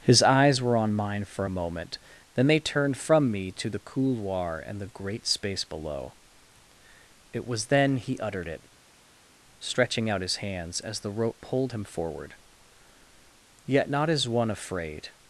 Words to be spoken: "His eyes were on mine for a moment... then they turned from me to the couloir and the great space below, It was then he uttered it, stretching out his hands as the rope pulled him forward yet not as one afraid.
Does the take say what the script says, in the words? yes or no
yes